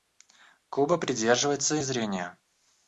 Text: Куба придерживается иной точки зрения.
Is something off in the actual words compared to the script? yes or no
yes